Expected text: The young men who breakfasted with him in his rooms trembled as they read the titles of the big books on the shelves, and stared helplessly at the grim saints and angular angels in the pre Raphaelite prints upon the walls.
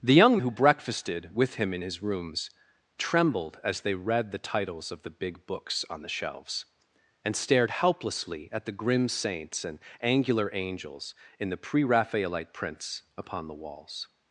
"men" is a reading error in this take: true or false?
true